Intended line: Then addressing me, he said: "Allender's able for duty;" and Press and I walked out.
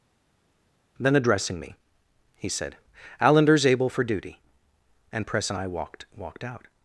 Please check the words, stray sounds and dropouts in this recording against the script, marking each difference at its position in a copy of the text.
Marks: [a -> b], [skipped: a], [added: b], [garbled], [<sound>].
Then addressing me, he said: "Allender's able for duty;" and Press and I walked [added: walked] out.